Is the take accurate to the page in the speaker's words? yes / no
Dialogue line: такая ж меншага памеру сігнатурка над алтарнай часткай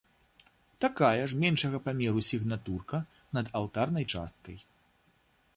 yes